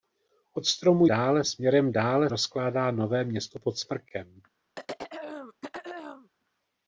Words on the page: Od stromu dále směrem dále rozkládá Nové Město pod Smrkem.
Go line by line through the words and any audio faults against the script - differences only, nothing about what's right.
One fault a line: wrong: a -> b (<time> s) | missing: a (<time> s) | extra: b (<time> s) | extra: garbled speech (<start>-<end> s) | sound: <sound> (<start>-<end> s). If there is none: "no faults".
sound: throat clearing (4.8-6.3 s)